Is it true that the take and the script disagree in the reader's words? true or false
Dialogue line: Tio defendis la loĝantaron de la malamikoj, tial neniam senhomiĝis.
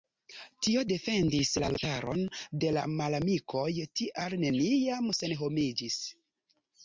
false